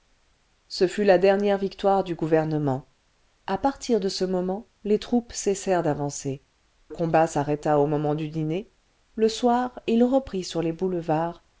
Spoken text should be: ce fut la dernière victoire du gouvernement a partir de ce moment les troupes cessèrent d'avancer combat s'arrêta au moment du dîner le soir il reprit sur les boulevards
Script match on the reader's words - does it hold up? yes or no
yes